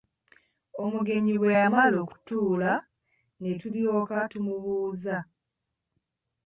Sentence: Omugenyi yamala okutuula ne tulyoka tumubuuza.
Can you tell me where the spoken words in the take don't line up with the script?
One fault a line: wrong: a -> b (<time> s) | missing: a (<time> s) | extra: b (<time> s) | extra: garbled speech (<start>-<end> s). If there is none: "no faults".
extra: bwe (1.4 s)